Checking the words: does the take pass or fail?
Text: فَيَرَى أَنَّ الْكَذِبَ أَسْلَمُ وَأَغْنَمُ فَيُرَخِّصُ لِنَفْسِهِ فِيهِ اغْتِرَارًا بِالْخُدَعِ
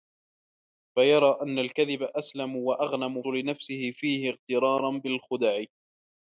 fail